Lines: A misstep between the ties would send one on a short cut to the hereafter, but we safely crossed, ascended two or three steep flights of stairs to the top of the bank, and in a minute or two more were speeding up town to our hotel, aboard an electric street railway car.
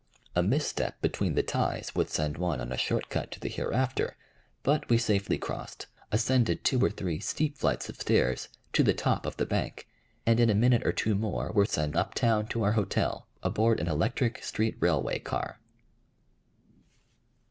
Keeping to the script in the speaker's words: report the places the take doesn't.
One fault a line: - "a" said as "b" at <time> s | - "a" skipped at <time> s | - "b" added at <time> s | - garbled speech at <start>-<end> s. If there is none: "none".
- "speeding" said as "send" at 11.7 s